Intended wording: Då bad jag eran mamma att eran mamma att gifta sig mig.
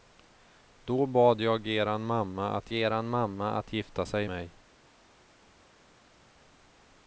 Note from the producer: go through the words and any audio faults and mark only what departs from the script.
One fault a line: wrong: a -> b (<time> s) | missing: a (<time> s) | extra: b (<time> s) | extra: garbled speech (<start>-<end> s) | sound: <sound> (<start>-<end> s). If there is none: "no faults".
no faults